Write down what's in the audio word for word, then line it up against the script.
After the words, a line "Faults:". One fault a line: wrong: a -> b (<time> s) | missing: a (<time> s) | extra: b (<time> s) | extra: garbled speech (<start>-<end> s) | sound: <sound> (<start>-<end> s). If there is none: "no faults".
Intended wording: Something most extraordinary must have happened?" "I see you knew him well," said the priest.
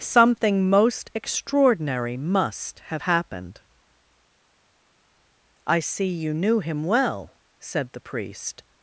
Something most extraordinary must have happened?" "I see you knew him well," said the priest.
Faults:
no faults